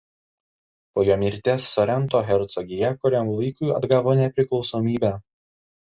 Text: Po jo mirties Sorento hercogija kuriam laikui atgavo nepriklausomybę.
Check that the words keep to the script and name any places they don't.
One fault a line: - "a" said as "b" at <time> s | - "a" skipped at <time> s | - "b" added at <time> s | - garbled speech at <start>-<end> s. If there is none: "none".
none